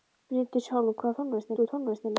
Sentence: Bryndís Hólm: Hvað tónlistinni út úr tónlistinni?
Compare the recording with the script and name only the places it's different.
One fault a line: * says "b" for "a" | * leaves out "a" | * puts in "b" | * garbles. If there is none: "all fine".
all fine